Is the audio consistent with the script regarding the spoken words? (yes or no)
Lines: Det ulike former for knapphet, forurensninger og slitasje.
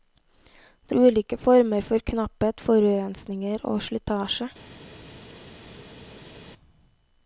yes